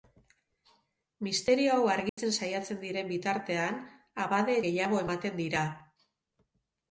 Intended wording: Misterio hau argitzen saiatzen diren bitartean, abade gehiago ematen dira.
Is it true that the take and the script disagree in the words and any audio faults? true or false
true